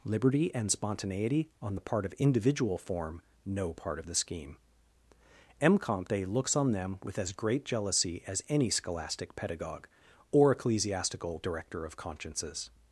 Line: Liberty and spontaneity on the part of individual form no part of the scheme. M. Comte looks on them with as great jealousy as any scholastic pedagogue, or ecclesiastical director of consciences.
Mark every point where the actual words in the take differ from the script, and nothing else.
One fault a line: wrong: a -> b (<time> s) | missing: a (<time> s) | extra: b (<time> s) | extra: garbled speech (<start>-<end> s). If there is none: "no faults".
no faults